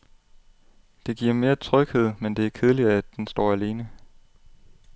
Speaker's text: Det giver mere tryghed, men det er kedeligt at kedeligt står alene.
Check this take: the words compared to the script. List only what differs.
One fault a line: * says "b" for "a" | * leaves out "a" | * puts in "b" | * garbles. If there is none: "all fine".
* says "den" for "kedeligt"